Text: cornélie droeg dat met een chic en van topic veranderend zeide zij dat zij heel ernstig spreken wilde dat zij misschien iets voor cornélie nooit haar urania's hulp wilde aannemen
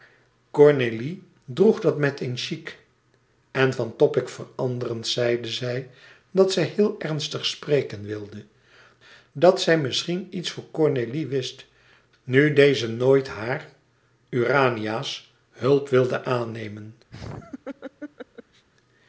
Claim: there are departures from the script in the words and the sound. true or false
true